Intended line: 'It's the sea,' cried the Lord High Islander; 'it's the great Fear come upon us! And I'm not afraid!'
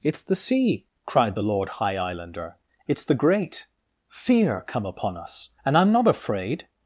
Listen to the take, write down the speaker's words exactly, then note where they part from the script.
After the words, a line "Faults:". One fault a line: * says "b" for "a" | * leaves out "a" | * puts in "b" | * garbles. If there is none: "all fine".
'It's the sea,' cried the Lord High Islander; 'it's the great Fear come upon us! And I'm not afraid!'
Faults:
all fine